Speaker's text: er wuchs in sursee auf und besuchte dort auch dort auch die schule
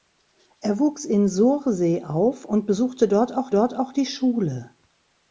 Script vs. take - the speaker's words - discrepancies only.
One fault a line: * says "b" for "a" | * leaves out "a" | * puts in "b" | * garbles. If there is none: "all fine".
all fine